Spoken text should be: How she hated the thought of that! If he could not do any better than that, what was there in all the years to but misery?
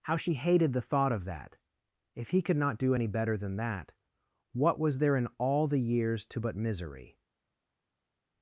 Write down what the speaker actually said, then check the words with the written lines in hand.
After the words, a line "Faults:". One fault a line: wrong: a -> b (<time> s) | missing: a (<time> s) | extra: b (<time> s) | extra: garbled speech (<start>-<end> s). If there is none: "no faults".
How she hated the thought of that! If he could not do any better than that, what was there in all the years to but misery?
Faults:
no faults